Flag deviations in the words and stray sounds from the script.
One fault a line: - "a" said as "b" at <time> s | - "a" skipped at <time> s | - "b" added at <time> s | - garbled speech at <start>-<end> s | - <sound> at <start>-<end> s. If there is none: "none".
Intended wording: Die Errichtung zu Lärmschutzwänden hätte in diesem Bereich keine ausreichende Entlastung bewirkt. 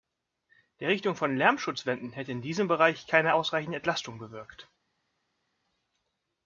- "zu" said as "von" at 1.1 s